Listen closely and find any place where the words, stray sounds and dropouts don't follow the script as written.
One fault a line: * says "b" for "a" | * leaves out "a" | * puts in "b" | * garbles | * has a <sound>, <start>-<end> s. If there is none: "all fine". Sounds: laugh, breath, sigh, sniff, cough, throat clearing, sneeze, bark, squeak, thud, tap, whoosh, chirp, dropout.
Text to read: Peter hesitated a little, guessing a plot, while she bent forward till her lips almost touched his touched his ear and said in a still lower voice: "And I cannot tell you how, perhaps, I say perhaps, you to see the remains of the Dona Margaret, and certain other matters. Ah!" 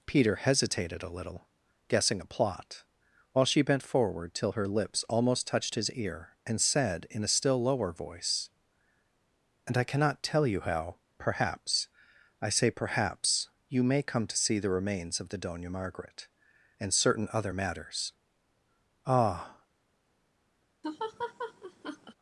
* leaves out "touched his"
* puts in "may come"
* has a laugh, 20.8-22.1 s